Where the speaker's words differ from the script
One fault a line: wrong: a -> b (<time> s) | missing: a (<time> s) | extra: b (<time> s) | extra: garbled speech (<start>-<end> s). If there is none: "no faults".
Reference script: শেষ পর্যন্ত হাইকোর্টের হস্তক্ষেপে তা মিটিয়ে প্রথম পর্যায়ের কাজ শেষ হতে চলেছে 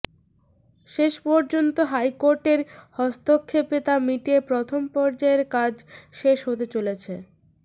no faults